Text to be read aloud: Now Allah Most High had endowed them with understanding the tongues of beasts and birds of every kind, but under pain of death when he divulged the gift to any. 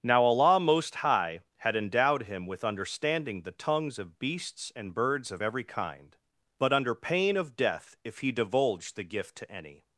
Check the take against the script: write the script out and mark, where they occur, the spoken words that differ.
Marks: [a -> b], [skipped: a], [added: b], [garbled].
Now Allah Most High had endowed [them -> him] with understanding the tongues of beasts and birds of every kind, but under pain of death [when -> if] he divulged the gift to any.